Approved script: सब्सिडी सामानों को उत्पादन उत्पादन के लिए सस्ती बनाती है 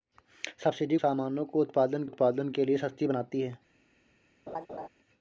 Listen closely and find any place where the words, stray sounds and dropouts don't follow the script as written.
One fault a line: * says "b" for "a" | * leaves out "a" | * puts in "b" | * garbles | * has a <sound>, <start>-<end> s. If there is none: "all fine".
* has a laugh, 4.5-4.9 s